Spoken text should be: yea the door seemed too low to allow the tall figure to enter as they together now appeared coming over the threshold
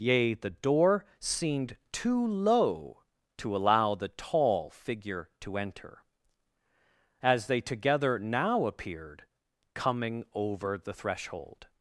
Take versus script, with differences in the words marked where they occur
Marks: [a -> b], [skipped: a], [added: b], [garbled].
yea the door seemed too low to allow the tall figure to enter as they together now appeared coming over the threshold